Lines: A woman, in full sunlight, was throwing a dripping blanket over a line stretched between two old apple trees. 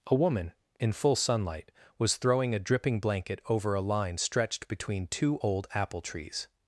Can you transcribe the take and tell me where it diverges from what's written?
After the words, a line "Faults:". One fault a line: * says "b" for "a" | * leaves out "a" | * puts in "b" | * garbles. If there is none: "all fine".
A woman, in full sunlight, was throwing a dripping blanket over a line stretched between two old apple trees.
Faults:
all fine